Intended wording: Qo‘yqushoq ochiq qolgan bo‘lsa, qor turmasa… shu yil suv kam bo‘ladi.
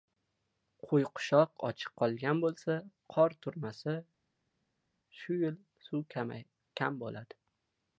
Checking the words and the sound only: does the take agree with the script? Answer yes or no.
yes